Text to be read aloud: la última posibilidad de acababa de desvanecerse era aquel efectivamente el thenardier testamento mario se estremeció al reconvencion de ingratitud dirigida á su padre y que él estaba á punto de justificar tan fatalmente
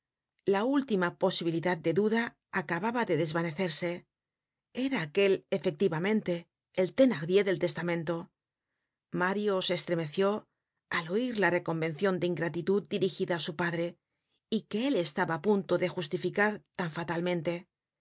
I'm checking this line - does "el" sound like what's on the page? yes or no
yes